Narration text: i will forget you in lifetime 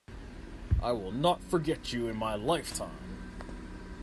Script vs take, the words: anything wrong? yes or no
yes